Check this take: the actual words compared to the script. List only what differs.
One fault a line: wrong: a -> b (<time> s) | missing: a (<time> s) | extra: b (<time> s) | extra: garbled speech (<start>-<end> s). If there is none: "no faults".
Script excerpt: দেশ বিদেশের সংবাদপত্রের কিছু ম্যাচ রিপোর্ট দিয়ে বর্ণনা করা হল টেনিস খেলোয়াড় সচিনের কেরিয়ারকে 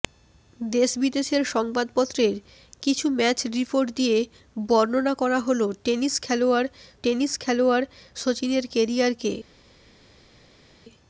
extra: টেনিস খেলোয়াড় (7.0 s)